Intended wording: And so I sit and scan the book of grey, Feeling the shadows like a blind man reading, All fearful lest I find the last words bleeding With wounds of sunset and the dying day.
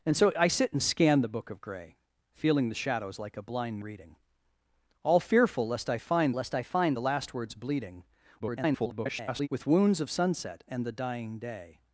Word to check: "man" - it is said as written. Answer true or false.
false